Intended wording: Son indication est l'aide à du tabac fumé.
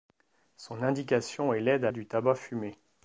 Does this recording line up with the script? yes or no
yes